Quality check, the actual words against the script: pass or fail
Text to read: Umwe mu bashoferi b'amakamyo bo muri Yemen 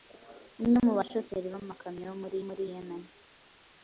fail